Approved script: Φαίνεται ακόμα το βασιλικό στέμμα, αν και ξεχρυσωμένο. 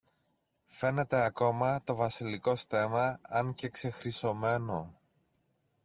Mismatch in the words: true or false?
false